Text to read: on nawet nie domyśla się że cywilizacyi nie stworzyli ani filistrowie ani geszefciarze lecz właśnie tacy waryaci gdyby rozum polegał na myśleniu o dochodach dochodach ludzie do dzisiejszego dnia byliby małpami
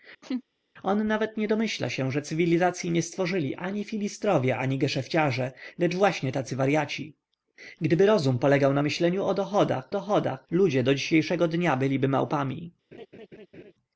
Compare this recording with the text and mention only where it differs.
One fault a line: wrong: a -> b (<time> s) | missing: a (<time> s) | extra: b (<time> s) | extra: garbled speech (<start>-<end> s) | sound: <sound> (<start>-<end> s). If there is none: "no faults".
sound: laugh (0.2-0.4 s)
sound: laugh (12.9-13.7 s)